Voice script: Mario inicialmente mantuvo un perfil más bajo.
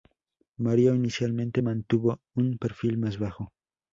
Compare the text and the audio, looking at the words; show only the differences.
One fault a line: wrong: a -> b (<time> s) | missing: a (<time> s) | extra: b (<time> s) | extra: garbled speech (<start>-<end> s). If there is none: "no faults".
no faults